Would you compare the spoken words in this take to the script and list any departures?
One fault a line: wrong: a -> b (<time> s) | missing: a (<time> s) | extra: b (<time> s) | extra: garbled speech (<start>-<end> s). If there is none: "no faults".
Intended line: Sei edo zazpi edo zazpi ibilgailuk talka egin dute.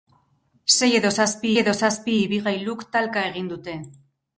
no faults